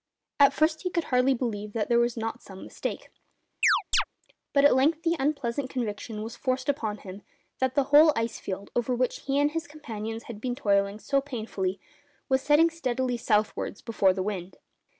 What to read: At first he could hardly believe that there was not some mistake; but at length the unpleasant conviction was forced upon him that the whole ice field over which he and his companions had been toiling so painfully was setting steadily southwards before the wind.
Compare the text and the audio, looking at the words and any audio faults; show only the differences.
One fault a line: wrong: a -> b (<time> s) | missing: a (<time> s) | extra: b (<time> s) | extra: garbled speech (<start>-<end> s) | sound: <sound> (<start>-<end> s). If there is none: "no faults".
sound: chirp (3.6-4.0 s)